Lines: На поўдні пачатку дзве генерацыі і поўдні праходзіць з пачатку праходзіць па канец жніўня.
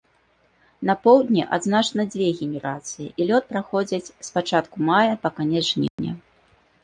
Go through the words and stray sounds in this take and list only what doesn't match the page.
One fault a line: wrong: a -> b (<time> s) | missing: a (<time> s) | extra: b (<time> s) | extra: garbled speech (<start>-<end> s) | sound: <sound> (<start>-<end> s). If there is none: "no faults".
wrong: пачатку -> адзначана (1.6 s)
wrong: поўдні -> лёт (3.3 s)
wrong: праходзіць -> мая (4.9 s)
sound: dropout (5.9-6.0 s)